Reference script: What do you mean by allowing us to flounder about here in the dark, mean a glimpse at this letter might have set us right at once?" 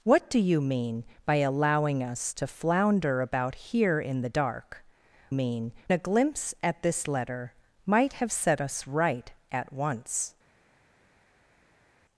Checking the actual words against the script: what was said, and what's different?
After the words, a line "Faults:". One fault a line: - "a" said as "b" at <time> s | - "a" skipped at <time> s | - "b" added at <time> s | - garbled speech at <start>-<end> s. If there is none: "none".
What do you mean by allowing us to flounder about here in the dark, mean a glimpse at this letter might have set us right at once?"
Faults:
none